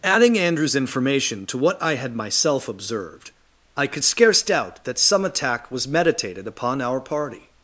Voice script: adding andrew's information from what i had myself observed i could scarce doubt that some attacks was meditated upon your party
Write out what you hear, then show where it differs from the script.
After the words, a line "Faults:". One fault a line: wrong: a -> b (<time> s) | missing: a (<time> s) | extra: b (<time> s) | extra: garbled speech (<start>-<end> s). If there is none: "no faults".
adding andrew's information to what i had myself observed i could scarce doubt that some attack was meditated upon our party
Faults:
wrong: from -> to (1.4 s)
wrong: attacks -> attack (5.3 s)
wrong: your -> our (6.8 s)